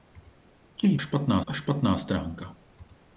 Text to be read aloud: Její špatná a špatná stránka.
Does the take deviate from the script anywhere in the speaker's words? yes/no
no